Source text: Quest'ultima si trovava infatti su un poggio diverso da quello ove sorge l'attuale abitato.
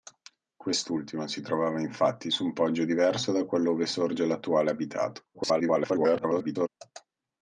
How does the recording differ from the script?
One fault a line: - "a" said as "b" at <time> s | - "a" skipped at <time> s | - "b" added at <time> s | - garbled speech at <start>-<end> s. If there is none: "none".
- garbled speech at 5.3-6.7 s